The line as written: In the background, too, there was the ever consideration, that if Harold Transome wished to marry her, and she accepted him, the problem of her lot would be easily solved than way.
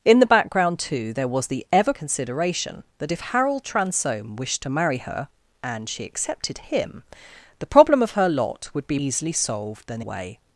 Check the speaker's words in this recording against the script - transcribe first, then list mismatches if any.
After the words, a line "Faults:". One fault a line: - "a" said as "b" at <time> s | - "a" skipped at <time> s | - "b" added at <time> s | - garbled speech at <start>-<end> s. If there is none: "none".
In the background, too, there was the ever consideration, that if Harold Transome wished to marry her, and she accepted him, the problem of her lot would be easily solved than way.
Faults:
none